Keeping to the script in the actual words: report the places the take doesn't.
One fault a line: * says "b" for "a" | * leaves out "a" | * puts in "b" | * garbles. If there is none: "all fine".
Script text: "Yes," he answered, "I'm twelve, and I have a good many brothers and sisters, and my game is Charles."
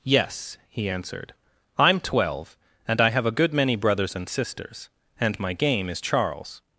all fine